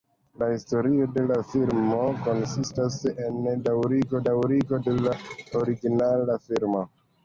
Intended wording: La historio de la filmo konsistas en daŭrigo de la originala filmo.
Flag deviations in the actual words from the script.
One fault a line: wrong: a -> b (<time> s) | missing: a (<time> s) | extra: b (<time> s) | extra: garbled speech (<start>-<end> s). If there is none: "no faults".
extra: daŭrigo (4.3 s)